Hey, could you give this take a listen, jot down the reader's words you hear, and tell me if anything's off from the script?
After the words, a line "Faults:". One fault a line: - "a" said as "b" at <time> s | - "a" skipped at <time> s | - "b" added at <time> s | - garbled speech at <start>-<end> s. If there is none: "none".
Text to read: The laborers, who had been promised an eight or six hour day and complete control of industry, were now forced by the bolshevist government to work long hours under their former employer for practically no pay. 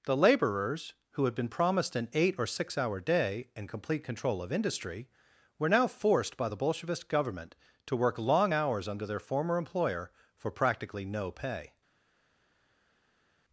The laborers, who had been promised an eight or six hour day and complete control of industry, were now forced by the bolshevist government to work long hours under their former employer for practically no pay.
Faults:
none